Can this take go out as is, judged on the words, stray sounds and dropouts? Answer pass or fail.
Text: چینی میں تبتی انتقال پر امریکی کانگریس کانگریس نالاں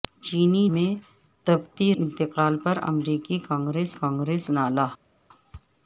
pass